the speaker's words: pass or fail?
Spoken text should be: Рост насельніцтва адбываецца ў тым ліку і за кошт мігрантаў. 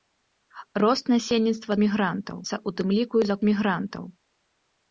fail